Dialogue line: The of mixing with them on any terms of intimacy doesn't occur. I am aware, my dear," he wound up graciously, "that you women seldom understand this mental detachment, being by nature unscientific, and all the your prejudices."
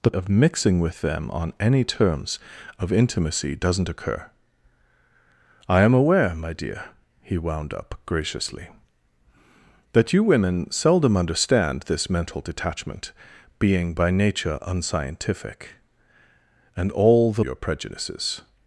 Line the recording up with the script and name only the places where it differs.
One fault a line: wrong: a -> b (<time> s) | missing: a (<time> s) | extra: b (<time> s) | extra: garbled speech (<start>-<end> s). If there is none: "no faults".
no faults